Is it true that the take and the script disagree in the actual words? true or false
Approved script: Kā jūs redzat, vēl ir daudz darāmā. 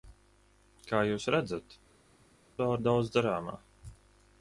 false